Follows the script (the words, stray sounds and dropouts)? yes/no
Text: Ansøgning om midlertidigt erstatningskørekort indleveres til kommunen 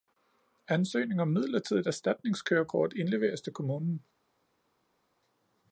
yes